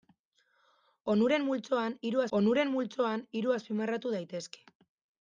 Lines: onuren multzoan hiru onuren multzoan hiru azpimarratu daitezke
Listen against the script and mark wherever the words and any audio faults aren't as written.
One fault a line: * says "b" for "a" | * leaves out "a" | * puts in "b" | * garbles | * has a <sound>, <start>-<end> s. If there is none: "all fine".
all fine